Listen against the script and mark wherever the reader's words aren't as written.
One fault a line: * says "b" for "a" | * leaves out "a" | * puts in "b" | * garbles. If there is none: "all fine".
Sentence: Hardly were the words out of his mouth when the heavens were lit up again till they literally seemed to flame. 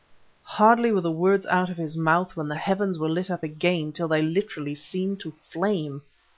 all fine